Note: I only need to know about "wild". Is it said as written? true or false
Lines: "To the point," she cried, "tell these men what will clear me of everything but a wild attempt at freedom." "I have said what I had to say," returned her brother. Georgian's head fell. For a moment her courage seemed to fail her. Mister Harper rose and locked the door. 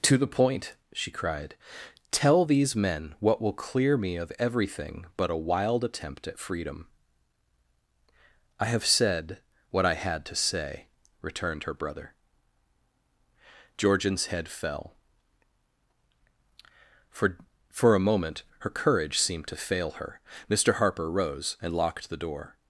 true